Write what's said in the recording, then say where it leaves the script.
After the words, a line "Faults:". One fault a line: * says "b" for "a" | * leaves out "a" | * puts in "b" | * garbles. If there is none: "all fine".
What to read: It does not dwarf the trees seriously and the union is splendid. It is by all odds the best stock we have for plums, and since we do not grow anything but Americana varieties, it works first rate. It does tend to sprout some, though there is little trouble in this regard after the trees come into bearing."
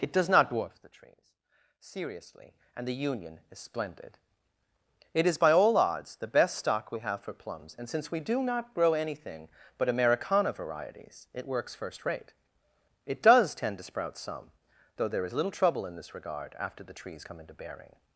It does not dwarf the trees seriously and the union is splendid. It is by all odds the best stock we have for plums, and since we do not grow anything but Americana varieties, it works first rate. It does tend to sprout some, though there is little trouble in this regard after the trees come into bearing."
Faults:
all fine